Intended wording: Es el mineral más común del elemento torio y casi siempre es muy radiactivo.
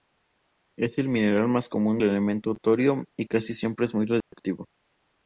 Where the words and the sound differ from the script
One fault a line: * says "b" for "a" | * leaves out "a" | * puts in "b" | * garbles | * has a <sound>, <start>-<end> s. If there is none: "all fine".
* leaves out "del"
* has a dropout, 4.2-4.3 s